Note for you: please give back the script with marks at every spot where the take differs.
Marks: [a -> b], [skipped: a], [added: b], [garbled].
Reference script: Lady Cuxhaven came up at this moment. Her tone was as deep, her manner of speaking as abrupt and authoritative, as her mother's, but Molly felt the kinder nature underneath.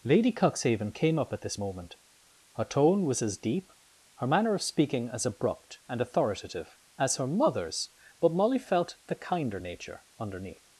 Lady Cuxhaven came up at this moment. Her tone was as deep, her manner of speaking as abrupt and authoritative, as her mother's, but Molly felt the kinder nature underneath.